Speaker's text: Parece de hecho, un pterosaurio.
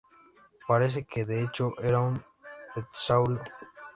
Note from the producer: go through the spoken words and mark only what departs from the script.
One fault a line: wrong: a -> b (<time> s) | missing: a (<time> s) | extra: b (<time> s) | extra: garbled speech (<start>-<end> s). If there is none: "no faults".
extra: que (1.1 s)
extra: era (1.8 s)